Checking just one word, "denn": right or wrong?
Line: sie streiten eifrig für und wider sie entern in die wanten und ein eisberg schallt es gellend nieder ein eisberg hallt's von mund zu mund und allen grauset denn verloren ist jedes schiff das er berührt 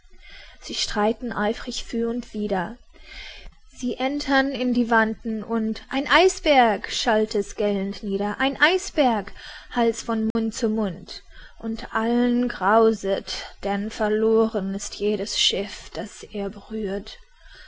right